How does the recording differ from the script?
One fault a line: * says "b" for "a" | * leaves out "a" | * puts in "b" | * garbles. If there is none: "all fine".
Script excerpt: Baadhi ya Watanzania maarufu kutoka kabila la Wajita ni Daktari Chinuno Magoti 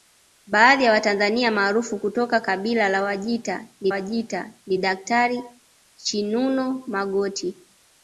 * puts in "Wajita ni"